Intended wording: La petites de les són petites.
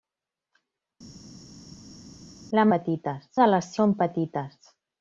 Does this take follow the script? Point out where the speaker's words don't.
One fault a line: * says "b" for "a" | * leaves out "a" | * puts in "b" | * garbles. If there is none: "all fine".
all fine